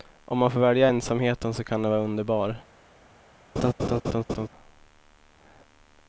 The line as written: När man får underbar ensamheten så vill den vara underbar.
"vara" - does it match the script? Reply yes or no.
yes